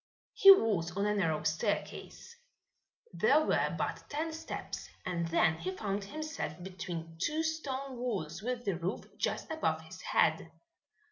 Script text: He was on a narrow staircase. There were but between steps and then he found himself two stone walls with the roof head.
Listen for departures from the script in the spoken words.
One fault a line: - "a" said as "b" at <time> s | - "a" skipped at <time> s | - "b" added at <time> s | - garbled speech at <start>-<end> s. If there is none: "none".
- "between" said as "ten" at 4.1 s
- "between" added at 6.6 s
- "just above his" added at 9.2 s